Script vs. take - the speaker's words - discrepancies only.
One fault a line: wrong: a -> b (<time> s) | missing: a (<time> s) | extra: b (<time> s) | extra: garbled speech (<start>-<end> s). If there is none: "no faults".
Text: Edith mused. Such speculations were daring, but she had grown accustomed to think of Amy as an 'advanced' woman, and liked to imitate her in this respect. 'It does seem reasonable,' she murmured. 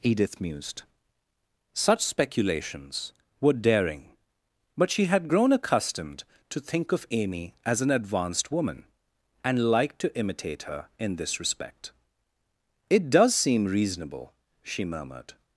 no faults